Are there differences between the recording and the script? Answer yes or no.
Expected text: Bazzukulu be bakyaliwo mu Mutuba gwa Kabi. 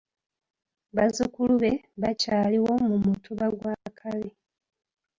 no